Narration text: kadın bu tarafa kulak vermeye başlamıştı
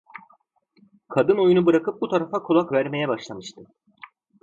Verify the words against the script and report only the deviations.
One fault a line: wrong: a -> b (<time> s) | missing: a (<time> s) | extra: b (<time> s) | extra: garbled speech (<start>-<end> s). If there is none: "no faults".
extra: oyunu bırakıp (1.4 s)